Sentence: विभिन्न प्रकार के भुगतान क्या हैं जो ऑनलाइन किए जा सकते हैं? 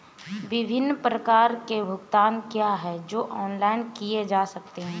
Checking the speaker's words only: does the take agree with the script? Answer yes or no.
yes